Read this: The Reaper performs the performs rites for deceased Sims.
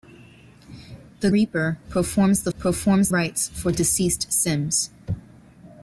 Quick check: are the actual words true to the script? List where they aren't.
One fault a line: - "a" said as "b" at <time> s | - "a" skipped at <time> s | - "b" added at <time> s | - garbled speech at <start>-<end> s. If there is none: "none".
none